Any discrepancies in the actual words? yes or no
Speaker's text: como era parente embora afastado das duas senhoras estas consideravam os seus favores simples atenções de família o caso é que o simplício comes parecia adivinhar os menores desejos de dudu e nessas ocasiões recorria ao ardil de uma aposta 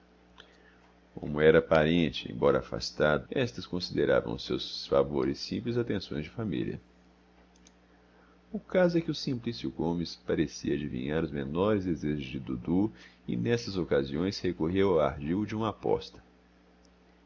yes